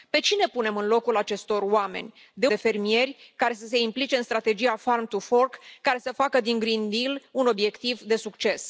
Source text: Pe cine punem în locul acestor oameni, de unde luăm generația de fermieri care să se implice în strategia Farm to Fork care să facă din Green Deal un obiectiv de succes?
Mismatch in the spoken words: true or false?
true